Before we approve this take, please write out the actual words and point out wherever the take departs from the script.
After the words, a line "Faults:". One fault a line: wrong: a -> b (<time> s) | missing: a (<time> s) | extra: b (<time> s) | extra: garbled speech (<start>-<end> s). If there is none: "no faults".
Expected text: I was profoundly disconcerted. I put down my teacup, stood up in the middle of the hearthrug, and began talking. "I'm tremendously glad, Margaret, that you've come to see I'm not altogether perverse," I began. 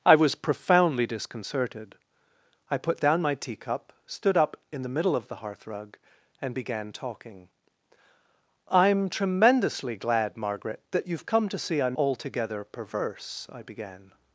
I was profoundly disconcerted. I put down my teacup, stood up in the middle of the hearthrug, and began talking. "I'm tremendously glad, Margaret, that you've come to see I'm altogether perverse," I began.
Faults:
missing: not (12.0 s)